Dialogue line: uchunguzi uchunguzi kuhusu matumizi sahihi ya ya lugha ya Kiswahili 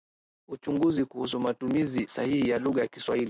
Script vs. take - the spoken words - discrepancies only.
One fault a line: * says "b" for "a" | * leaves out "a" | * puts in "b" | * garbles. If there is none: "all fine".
* leaves out "uchunguzi"
* leaves out "ya"